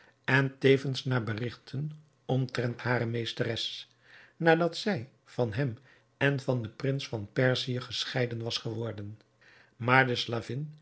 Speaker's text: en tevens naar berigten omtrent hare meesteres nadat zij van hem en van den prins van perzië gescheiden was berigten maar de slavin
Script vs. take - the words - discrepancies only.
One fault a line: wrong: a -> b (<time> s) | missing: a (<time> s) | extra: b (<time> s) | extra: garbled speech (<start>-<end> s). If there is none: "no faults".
wrong: berigten -> geworden (8.6 s)